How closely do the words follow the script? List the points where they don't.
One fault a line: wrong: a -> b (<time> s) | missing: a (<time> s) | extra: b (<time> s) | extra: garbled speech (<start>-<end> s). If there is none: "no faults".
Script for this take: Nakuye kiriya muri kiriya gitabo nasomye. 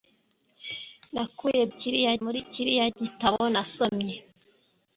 no faults